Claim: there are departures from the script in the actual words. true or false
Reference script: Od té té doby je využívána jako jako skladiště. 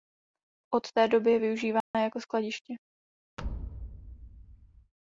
true